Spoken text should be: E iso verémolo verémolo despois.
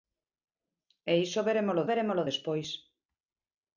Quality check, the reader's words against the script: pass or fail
pass